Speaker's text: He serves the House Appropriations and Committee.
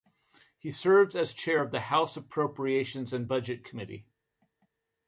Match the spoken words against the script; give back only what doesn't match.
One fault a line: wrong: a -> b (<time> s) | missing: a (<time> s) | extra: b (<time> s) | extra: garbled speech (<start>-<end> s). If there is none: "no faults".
extra: as chair of (1.2 s)
extra: Budget (3.2 s)